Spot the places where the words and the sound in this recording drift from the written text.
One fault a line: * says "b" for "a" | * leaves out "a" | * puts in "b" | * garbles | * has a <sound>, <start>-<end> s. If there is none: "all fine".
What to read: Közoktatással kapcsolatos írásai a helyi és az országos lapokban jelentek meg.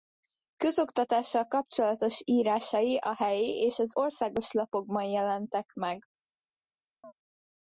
* has a chirp, 7.0-7.1 s